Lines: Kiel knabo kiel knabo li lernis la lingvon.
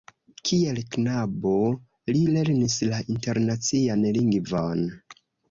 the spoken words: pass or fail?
fail